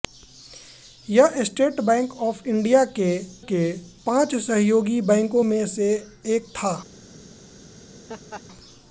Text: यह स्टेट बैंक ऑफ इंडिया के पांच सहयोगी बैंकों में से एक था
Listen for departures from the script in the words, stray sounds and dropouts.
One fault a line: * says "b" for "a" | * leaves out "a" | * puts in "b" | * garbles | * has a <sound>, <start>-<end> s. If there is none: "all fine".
* puts in "के"
* has a laugh, 8.1-8.4 s